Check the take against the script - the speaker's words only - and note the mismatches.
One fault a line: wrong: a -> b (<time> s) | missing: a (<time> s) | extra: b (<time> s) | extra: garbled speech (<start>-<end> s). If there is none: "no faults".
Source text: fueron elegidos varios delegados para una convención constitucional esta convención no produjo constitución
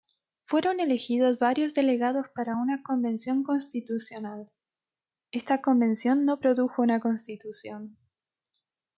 extra: una (6.8 s)